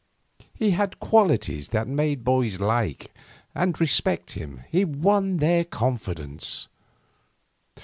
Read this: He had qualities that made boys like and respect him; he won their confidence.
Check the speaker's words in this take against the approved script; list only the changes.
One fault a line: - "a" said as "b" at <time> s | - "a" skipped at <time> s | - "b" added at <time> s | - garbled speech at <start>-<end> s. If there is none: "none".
none